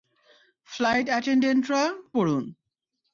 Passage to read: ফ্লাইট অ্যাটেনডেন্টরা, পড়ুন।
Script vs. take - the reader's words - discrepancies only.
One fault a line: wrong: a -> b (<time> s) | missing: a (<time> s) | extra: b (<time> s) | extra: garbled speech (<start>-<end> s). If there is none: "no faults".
no faults